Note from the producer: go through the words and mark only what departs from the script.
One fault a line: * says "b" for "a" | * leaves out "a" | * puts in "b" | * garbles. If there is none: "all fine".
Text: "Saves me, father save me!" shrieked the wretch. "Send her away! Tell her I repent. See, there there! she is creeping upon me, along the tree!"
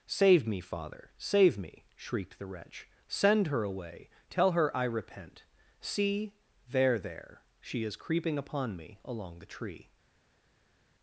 * says "Save" for "Saves"